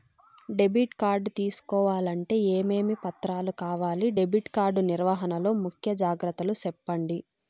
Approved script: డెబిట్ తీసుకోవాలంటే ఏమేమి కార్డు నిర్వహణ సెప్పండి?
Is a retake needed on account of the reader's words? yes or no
yes